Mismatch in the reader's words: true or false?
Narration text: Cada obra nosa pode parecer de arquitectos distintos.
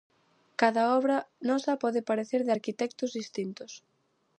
false